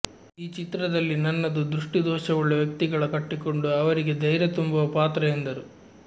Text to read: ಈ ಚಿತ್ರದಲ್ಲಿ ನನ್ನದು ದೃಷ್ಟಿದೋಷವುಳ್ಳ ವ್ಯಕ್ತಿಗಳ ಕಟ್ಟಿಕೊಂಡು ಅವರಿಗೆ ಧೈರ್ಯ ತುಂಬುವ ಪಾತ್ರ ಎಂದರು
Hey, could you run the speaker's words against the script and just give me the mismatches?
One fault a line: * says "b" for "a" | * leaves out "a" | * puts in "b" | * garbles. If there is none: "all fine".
all fine